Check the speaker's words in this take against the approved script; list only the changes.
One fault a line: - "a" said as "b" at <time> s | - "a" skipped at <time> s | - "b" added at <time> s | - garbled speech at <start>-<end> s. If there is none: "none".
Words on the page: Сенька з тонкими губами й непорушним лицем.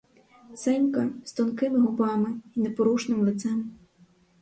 none